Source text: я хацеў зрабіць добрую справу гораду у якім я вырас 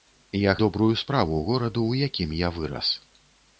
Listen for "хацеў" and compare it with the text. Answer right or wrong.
wrong